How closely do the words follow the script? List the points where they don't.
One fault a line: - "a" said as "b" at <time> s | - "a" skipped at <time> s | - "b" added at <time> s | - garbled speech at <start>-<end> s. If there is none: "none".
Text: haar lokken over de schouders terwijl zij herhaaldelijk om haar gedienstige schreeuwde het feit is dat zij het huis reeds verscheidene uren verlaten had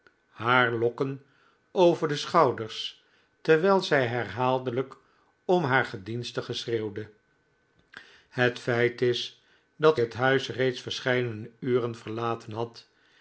- "zij" skipped at 10.0 s